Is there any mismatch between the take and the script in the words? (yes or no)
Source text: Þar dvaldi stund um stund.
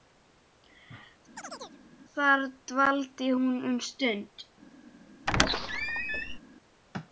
yes